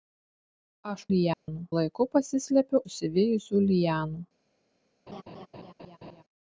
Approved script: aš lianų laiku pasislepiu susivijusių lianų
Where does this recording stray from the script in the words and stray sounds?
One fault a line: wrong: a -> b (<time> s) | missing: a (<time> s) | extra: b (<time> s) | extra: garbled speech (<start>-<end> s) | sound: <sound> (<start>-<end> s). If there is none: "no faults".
sound: dropout (1.3-1.5 s)
sound: laugh (5.1-6.2 s)